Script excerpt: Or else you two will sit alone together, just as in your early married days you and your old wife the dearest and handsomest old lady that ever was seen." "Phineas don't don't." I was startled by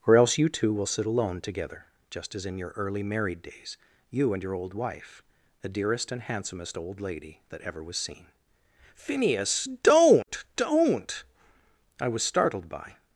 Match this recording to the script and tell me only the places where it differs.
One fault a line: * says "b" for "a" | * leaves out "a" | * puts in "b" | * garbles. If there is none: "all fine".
all fine